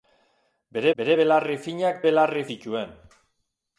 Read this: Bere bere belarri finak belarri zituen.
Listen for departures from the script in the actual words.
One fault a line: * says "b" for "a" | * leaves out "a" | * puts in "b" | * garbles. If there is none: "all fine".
all fine